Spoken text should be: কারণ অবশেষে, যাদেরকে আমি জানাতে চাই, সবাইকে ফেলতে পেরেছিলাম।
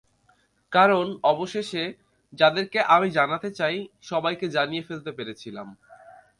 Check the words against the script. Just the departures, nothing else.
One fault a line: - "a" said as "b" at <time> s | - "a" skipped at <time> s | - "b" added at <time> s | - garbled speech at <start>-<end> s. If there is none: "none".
- "জানিয়ে" added at 4.5 s